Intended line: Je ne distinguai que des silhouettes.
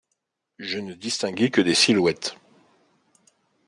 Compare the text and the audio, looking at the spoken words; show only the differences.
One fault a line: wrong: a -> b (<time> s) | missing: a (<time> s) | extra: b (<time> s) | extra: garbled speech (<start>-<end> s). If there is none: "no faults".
no faults